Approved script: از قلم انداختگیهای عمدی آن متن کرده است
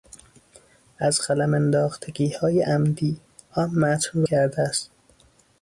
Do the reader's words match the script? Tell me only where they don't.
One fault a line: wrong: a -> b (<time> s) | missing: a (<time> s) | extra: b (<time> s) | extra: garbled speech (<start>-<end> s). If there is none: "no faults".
no faults